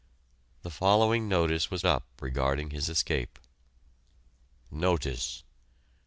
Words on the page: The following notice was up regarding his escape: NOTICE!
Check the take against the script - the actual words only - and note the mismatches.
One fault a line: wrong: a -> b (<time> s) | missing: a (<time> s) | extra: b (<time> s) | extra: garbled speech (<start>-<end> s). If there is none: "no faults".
no faults